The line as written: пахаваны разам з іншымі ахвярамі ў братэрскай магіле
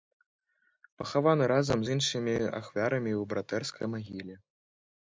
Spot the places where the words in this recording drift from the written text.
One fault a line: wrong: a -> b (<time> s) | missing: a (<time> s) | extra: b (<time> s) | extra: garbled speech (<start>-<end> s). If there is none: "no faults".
no faults